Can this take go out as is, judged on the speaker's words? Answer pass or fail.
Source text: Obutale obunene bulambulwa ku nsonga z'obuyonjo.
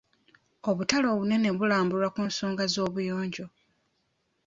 pass